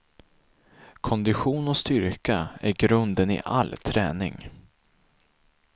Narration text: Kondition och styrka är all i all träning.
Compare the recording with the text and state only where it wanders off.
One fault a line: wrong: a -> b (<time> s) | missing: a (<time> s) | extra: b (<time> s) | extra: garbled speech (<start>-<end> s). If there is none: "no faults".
wrong: all -> grunden (2.7 s)